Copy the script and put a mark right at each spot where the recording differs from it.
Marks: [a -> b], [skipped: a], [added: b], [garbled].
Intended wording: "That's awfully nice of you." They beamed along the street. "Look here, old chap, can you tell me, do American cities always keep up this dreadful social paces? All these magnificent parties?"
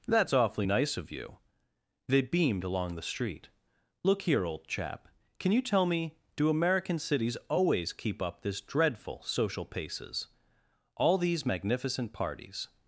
"That's awfully nice of you." They beamed along the street. "Look here, old chap, can you tell me, do American cities always keep up this dreadful social paces? All these magnificent parties?"